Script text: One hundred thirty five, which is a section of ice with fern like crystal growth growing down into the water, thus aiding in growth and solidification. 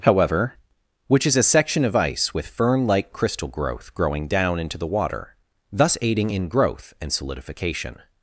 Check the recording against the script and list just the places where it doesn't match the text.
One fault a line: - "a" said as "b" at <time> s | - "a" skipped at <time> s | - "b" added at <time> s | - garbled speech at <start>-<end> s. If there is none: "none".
- "One hundred thirty five" said as "However" at 0.0 s